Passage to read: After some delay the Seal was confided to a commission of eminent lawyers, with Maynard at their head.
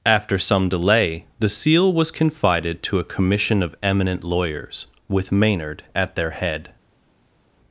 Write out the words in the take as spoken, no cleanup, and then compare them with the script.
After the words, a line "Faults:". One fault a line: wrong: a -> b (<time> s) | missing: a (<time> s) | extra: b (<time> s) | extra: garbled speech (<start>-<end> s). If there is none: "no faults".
After some delay the Seal was confided to a commission of eminent lawyers, with Maynard at their head.
Faults:
no faults